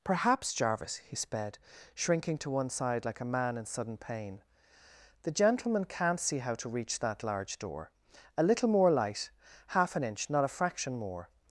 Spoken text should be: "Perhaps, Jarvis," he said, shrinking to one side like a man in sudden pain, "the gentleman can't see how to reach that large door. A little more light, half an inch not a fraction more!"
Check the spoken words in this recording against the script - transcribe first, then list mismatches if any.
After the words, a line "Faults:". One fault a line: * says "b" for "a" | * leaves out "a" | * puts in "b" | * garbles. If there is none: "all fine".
"Perhaps, Jarvis," he sped, shrinking to one side like a man in sudden pain, "the gentleman can't see how to reach that large door. A little more light, half an inch not a fraction more!"
Faults:
* says "sped" for "said"